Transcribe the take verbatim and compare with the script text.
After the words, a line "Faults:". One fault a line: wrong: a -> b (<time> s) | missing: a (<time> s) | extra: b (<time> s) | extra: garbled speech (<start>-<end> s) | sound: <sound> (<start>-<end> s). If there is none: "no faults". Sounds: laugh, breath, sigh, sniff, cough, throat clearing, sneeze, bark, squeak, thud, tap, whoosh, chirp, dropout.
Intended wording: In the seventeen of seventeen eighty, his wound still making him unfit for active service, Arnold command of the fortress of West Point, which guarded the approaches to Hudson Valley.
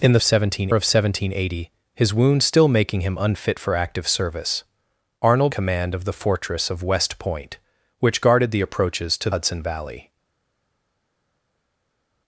In the seventeen of seventeen eighty, his wound still making him unfit for active service, Arnold command of the fortress of West Point, which guarded the approaches to Hudson Valley.
Faults:
no faults